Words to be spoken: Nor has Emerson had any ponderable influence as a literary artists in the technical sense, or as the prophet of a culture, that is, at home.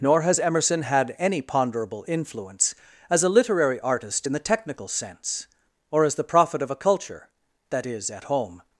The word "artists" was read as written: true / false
false